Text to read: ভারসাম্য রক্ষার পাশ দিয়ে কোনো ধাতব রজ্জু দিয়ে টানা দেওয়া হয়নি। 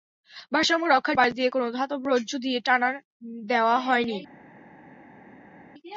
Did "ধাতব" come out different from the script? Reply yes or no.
no